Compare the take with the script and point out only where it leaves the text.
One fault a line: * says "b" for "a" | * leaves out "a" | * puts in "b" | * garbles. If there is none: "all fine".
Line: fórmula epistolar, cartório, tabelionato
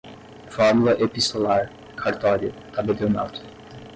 all fine